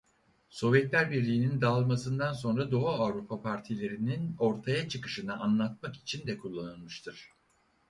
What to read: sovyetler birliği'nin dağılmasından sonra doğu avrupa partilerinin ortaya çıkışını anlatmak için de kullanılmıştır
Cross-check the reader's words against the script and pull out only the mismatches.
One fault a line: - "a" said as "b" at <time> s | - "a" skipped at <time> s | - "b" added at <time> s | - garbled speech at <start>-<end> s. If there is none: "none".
none